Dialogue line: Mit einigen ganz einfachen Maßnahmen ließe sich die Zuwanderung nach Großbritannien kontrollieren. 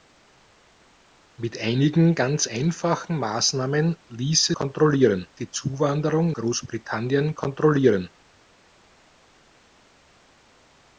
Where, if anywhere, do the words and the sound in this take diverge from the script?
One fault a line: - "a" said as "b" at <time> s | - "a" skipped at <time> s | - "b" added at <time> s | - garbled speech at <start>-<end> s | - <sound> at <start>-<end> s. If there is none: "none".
- "sich" said as "kontrollieren" at 4.5 s
- "nach" skipped at 6.3 s